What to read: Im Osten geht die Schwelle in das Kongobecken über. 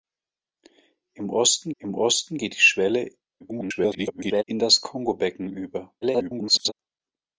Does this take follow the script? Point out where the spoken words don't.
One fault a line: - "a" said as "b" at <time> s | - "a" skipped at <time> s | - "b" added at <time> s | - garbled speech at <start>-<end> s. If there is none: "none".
- "im Osten" added at 1.8 s
- garbled speech at 3.4-4.4 s
- garbled speech at 6.0-6.7 s